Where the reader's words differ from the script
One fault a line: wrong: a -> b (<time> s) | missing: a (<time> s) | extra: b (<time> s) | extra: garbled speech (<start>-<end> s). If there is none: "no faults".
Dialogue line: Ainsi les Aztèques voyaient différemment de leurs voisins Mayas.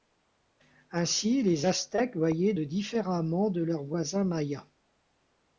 no faults